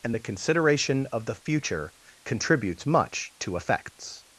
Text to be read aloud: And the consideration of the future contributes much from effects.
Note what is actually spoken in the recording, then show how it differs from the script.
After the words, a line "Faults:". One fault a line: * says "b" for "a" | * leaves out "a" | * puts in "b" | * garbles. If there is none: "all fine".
And the consideration of the future contributes much to effects.
Faults:
* says "to" for "from"